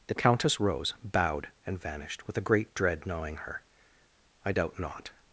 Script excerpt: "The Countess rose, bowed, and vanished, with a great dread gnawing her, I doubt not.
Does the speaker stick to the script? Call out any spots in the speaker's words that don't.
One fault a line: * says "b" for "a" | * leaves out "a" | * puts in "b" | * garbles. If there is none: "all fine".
all fine